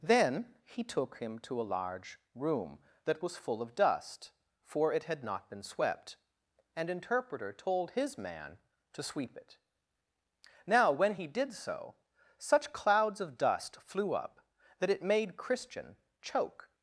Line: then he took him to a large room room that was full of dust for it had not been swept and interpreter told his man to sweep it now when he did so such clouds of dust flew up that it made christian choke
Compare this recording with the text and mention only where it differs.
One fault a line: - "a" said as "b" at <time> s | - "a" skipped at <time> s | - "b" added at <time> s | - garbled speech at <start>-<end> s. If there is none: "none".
- "room" skipped at 2.8 s